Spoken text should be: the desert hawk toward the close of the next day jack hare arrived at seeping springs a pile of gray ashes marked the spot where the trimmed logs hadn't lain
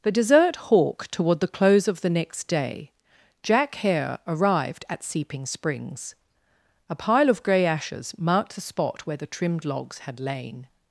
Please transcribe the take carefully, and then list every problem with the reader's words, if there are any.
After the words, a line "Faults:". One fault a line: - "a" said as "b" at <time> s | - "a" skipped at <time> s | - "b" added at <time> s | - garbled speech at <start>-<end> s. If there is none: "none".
the desert hawk toward the close of the next day jack hare arrived at seeping springs a pile of gray ashes marked the spot where the trimmed logs had lain
Faults:
- "hadn't" said as "had" at 10.0 s